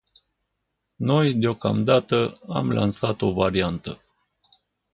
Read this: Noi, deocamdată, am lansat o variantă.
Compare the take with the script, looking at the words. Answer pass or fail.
pass